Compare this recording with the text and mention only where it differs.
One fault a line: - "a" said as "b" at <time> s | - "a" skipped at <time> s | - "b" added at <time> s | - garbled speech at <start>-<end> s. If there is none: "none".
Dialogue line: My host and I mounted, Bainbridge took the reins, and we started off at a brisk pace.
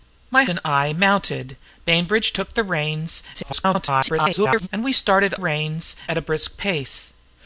- "host" skipped at 0.5 s
- garbled speech at 3.3-4.7 s
- "off" said as "reins" at 5.3 s